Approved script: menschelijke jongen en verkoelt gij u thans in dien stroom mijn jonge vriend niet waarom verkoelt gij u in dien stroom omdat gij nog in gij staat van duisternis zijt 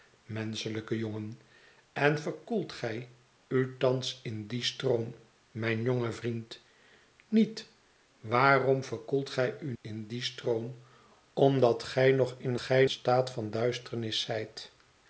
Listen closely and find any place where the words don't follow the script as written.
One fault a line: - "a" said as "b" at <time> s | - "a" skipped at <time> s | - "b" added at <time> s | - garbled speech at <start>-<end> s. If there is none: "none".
none